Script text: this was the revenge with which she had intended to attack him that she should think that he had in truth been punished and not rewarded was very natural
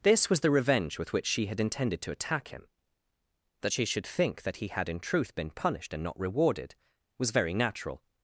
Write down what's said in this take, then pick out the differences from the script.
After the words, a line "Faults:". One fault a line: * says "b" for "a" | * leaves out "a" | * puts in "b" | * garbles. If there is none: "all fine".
this was the revenge with which she had intended to attack him that she should think that he had in truth been punished and not rewarded was very natural
Faults:
all fine